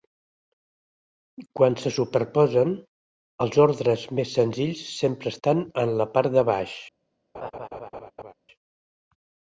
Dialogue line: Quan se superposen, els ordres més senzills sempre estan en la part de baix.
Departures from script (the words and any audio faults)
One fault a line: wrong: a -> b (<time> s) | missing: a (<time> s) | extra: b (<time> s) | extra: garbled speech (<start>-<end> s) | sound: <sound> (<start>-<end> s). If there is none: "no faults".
sound: laugh (7.3-8.3 s)